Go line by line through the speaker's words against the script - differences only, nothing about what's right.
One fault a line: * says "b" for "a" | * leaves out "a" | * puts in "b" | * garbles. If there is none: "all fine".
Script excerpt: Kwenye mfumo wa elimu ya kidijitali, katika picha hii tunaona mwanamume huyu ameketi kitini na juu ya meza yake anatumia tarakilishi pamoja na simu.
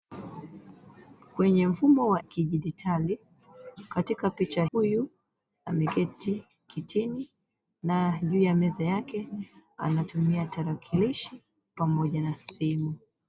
* leaves out "elimu ya"
* leaves out "hii tunaona mwanamume"